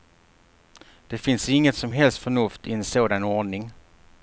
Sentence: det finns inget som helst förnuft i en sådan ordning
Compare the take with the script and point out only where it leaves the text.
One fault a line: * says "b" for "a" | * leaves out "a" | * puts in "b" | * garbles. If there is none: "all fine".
all fine